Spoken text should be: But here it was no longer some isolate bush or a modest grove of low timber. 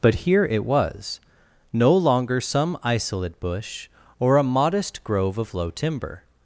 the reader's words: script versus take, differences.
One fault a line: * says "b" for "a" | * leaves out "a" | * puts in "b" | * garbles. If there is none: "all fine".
all fine